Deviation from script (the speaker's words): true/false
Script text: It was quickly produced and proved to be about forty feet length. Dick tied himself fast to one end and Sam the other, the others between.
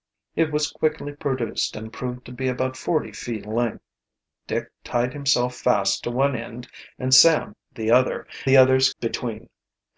false